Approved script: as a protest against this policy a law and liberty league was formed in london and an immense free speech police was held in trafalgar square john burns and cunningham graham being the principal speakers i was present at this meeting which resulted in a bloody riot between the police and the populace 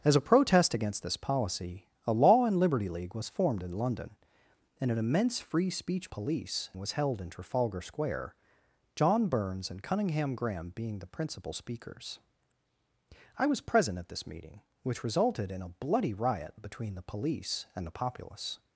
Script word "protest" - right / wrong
right